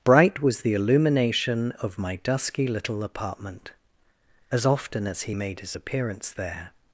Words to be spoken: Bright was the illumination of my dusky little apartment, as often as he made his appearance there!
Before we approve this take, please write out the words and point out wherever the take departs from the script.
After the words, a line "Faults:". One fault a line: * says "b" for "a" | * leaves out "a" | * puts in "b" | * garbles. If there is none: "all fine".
Bright was the illumination of my dusky little apartment, as often as he made his appearance there!
Faults:
all fine